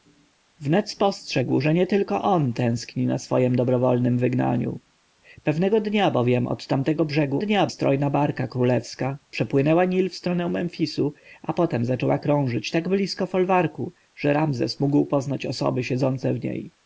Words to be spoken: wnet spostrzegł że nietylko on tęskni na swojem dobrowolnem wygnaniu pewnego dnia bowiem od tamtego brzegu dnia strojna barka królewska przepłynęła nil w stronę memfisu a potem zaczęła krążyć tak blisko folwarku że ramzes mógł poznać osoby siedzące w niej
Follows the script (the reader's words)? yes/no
yes